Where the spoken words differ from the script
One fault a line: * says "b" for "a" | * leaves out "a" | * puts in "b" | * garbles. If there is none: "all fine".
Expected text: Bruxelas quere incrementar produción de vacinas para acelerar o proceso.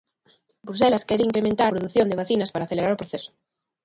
all fine